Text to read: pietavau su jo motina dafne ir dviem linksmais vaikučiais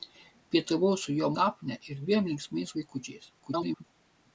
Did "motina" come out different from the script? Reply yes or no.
yes